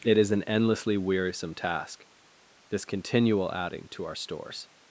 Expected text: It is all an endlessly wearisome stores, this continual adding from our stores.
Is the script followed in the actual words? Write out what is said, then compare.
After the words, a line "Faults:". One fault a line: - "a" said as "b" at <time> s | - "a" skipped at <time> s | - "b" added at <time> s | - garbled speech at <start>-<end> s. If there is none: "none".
It is an endlessly wearisome task, this continual adding to our stores.
Faults:
- "all" skipped at 0.3 s
- "stores" said as "task" at 1.5 s
- "from" said as "to" at 3.9 s